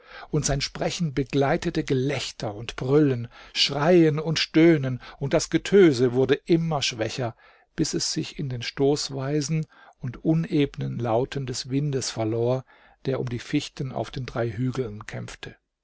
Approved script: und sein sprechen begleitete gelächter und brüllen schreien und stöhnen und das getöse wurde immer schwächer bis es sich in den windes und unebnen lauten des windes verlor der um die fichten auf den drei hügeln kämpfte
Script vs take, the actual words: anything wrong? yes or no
yes